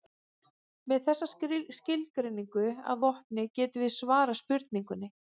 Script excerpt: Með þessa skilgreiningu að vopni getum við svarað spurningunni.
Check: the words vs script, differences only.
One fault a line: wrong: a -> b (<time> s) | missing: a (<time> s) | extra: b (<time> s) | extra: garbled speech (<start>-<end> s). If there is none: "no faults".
no faults